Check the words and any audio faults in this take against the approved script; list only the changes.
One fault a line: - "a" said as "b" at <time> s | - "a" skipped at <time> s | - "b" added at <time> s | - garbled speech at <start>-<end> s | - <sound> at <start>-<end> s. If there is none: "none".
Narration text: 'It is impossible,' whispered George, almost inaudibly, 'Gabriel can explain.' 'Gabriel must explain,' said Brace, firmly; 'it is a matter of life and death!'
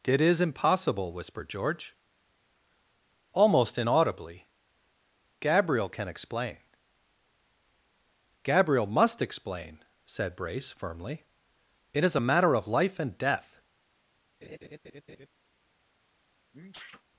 - laugh at 14.4-15.3 s
- sneeze at 16.5-17.0 s